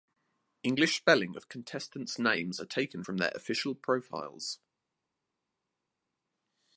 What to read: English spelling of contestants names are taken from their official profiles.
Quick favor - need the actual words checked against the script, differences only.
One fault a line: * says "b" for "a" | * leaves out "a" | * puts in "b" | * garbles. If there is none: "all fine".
all fine